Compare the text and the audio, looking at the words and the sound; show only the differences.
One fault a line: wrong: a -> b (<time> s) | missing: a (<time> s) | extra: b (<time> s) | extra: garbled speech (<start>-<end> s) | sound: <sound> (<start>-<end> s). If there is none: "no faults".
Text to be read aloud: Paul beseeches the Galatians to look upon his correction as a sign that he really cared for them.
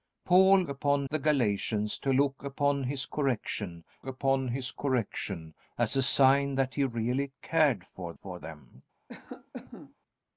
wrong: beseeches -> upon (0.7 s)
extra: upon his correction (4.1 s)
extra: for (8.1 s)
sound: cough (9.1-9.9 s)